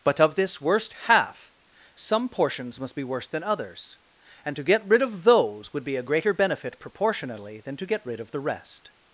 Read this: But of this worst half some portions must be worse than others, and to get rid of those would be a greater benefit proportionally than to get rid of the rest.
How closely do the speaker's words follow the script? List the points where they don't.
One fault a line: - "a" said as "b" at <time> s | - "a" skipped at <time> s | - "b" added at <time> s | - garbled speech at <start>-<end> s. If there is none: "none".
none